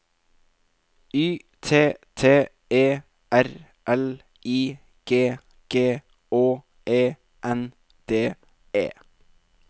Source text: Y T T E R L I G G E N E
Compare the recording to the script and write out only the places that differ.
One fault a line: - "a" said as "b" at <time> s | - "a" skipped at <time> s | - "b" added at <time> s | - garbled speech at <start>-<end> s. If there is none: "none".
- "Å" added at 6.3 s
- "D" added at 8.1 s